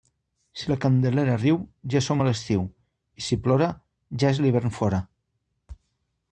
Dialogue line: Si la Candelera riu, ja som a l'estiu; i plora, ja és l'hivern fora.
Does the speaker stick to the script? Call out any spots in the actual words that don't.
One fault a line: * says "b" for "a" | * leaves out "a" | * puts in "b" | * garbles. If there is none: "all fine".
* puts in "si"